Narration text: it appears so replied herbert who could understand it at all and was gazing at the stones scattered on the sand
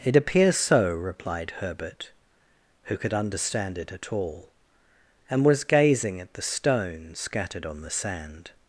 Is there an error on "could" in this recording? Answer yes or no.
no